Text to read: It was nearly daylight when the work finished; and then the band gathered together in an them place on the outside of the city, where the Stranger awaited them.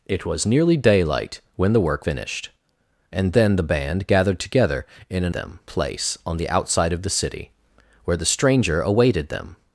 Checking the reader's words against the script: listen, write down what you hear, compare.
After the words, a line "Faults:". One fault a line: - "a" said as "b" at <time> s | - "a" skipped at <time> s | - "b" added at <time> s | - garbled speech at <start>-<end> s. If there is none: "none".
It was nearly daylight when the work finished; and then the band gathered together in an them place on the outside of the city, where the Stranger awaited them.
Faults:
none